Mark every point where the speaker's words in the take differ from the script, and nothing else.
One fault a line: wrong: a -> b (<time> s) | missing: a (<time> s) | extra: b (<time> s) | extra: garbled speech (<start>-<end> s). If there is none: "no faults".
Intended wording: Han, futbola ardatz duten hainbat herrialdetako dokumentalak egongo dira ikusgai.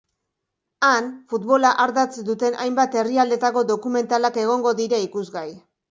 no faults